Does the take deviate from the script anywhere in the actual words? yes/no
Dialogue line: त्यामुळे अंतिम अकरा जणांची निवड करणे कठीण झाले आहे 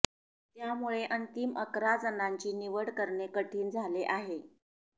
no